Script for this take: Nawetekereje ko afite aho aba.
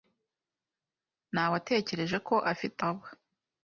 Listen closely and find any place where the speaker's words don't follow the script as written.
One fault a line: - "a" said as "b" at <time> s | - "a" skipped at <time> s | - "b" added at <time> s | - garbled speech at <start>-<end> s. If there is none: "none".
- "aho" skipped at 2.8 s